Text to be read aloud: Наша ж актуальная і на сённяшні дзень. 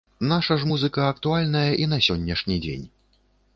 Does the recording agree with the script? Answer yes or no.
no